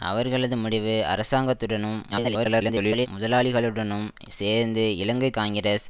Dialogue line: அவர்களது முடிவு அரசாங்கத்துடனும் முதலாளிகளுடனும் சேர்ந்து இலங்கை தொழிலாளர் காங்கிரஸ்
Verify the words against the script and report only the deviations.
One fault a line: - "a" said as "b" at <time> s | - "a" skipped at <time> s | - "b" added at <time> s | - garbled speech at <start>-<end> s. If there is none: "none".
- garbled speech at 2.1-3.1 s
- "தொழிலாளர்" skipped at 5.3 s